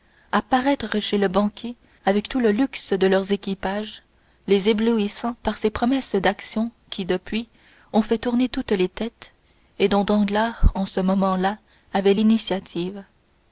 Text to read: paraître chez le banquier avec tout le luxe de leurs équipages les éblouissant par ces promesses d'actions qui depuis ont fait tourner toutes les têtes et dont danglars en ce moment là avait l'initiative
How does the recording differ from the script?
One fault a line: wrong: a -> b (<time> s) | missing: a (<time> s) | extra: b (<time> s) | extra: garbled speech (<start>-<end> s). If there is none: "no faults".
no faults